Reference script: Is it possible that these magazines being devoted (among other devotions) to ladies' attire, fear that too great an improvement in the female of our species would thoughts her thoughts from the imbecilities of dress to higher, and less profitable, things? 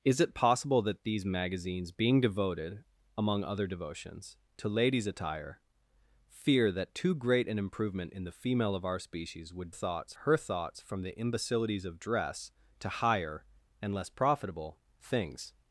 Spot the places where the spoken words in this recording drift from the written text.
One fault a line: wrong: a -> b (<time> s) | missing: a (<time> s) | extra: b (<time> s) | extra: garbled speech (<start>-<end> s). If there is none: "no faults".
no faults